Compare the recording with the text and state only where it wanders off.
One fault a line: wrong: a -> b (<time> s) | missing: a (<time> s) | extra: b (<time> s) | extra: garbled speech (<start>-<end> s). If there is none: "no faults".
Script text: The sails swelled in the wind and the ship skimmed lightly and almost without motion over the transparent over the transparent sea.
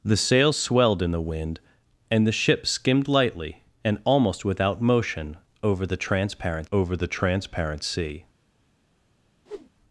no faults